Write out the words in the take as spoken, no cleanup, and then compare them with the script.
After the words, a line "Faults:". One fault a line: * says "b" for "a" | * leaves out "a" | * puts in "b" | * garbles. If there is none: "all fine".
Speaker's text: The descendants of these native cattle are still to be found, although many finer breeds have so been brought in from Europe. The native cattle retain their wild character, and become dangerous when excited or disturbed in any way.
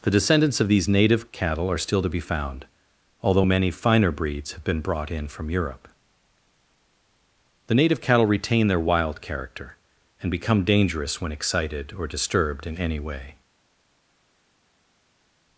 The descendants of these native cattle are still to be found, although many finer breeds have been brought in from Europe. The native cattle retain their wild character, and become dangerous when excited or disturbed in any way.
Faults:
* leaves out "so"